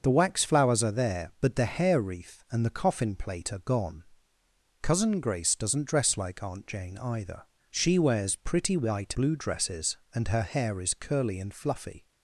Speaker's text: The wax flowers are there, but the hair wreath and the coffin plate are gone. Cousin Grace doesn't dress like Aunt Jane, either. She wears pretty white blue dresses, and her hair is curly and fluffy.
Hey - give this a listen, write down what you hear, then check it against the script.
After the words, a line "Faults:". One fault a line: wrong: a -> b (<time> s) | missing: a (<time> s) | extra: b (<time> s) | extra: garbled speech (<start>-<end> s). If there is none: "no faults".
The wax flowers are there, but the hair wreath and the coffin plate are gone. Cousin Grace doesn't dress like Aunt Jane, either. She wears pretty white blue dresses, and her hair is curly and fluffy.
Faults:
no faults